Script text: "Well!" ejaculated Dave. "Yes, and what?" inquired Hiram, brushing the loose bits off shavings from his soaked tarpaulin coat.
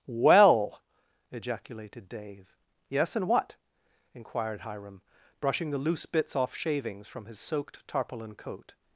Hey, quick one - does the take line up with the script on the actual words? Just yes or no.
yes